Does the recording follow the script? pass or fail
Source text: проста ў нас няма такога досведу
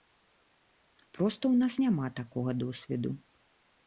pass